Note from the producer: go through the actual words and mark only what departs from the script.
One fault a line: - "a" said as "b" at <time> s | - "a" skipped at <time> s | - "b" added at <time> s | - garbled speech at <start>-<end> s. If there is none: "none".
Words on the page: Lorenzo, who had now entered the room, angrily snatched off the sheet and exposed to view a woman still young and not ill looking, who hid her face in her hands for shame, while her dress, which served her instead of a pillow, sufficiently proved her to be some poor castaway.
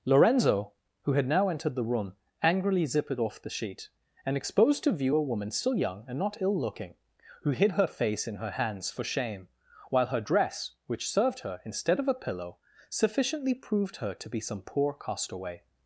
- "snatched" said as "zippered" at 2.9 s